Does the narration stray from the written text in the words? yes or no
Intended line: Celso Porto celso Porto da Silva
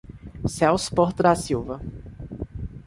yes